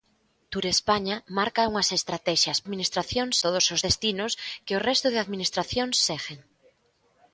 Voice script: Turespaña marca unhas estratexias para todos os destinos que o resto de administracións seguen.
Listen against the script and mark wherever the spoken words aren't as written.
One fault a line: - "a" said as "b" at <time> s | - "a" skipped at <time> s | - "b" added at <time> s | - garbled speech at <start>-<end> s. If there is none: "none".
- "para" said as "administracións" at 2.6 s